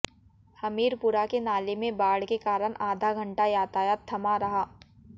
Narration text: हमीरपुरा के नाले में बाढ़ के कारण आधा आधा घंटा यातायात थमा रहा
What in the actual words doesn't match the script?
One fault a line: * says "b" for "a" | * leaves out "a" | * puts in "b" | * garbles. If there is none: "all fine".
* leaves out "आधा"